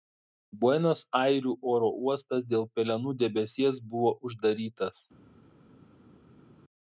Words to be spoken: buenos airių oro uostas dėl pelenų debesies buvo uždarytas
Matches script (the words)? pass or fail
pass